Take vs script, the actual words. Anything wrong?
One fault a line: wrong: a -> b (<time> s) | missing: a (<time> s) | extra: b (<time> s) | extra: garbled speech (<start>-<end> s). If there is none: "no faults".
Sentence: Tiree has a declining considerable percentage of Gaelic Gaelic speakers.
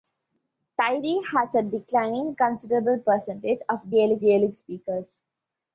no faults